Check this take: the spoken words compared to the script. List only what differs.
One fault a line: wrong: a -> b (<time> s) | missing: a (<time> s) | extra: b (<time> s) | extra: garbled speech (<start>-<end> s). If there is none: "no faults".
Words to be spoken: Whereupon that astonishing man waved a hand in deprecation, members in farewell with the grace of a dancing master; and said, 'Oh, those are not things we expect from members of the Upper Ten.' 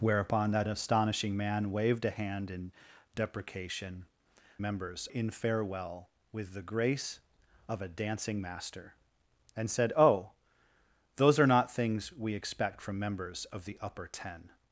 no faults